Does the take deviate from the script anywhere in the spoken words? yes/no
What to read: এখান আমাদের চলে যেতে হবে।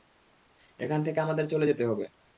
yes